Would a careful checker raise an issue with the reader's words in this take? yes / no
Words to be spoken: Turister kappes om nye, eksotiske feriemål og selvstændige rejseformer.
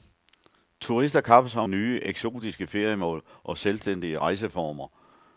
no